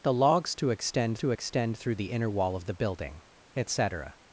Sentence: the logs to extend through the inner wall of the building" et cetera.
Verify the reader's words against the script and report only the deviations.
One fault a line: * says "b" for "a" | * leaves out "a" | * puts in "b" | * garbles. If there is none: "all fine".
* puts in "to extend"